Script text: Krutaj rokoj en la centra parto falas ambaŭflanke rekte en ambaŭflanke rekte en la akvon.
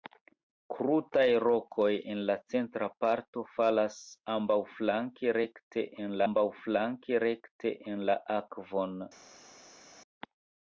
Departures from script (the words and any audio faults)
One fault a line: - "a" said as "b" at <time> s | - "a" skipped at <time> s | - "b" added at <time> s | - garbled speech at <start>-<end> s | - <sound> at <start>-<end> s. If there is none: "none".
none